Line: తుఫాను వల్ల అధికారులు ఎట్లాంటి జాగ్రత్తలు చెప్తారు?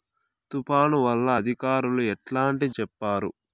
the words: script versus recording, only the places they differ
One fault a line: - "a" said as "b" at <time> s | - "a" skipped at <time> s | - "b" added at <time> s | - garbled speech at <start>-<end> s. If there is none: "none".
- "జాగ్రత్తలు" skipped at 2.7 s